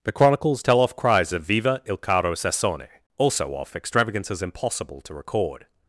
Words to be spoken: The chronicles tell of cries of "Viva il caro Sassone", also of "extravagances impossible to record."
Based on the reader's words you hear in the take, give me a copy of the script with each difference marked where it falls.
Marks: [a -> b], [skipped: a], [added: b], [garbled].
The chronicles tell [of -> off] cries of "Viva il caro Sassone", also [of -> off] "extravagances impossible to record."